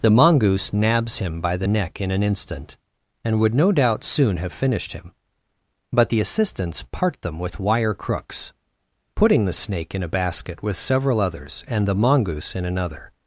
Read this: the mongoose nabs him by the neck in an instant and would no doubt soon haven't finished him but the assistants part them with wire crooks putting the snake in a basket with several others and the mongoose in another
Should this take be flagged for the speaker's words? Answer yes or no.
yes